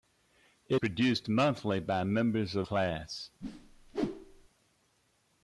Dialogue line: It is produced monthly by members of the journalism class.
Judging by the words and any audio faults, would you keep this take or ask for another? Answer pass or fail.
fail